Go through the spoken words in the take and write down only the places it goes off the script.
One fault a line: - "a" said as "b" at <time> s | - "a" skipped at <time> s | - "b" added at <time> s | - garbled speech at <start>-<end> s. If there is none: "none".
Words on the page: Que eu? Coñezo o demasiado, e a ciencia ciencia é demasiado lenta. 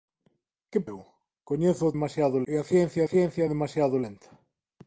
none